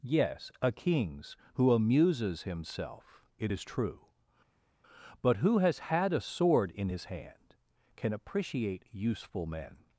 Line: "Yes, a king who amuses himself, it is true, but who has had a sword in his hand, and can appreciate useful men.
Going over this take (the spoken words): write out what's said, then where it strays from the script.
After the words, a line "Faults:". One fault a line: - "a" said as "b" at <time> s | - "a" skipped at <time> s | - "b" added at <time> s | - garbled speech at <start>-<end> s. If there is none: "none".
"Yes, a kings who amuses himself, it is true, but who has had a sword in his hand, can appreciate useful men.
Faults:
- "king" said as "kings" at 0.7 s
- "and" skipped at 7.5 s